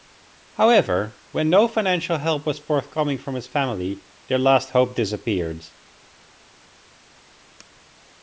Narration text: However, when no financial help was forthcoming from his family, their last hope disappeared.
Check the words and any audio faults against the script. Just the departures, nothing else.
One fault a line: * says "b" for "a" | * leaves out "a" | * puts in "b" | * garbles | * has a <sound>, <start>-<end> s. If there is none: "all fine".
all fine